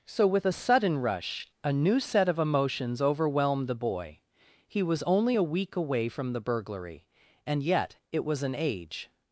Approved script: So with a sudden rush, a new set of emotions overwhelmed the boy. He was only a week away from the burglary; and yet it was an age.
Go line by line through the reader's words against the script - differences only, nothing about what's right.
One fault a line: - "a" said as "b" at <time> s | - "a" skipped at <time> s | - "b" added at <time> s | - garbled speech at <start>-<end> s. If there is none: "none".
none